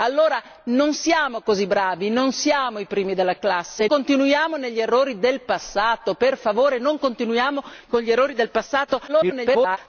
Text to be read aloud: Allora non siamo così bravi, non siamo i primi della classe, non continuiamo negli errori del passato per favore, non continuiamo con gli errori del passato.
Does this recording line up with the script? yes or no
no